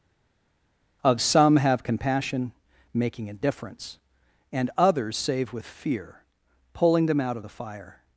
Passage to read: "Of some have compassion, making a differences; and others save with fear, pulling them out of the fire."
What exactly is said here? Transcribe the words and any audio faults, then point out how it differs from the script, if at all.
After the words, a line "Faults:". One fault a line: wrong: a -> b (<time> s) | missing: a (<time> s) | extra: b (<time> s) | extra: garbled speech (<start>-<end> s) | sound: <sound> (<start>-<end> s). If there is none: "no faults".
"Of some have compassion, making a difference; and others save with fear, pulling them out of the fire."
Faults:
wrong: differences -> difference (3.3 s)